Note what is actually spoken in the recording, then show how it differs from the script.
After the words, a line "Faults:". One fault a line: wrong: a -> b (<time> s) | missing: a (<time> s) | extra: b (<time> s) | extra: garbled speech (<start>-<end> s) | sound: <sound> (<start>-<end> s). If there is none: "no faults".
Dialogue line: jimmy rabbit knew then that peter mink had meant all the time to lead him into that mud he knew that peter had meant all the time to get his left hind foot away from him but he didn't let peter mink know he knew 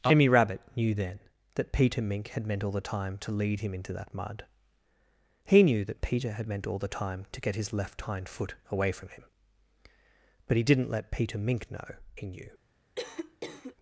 jimmy rabbit knew then that peter mink had meant all the time to lead him into that mud he knew that peter had meant all the time to get his left hind foot away from him but he didn't let peter mink know he knew
Faults:
sound: cough (13.0-13.8 s)